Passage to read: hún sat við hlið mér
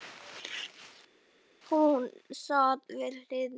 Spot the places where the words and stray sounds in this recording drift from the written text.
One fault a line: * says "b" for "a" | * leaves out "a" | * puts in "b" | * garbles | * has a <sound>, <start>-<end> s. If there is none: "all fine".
all fine